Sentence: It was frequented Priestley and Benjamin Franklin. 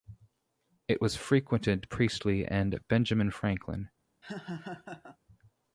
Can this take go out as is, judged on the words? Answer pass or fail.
pass